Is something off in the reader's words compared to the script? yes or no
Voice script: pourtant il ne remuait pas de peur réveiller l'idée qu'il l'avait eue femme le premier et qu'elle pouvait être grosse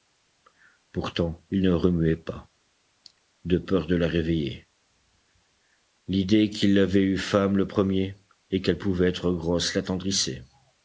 yes